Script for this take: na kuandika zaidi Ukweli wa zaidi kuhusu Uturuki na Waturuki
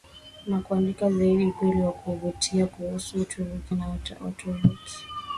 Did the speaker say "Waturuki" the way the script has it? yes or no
yes